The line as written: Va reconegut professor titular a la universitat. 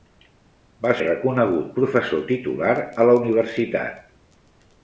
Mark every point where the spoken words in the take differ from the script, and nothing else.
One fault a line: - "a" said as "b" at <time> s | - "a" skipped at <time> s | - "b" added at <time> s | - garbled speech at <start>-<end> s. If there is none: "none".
none